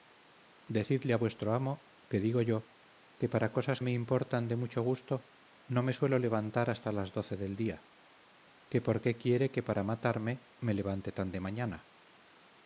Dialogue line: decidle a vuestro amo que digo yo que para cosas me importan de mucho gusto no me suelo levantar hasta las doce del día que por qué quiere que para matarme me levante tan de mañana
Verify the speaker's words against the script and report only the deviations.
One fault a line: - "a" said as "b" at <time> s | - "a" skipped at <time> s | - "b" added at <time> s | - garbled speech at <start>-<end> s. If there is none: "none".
none